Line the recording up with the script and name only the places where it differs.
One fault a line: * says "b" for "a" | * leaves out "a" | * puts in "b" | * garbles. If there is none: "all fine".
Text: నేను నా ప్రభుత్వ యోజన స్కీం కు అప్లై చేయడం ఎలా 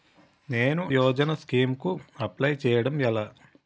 * leaves out "నా ప్రభుత్వ"